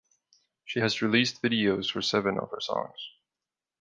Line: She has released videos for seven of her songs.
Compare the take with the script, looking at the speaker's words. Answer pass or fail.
pass